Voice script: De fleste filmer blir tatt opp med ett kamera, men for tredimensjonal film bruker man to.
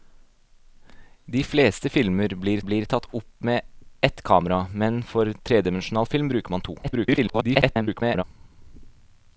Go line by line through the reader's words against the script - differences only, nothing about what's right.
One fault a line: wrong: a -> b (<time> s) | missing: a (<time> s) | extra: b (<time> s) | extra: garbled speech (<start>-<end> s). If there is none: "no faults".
extra: blir (2.6 s)
extra: garbled speech (6.8-8.2 s)